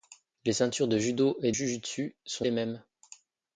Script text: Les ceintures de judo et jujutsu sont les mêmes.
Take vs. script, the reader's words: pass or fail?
pass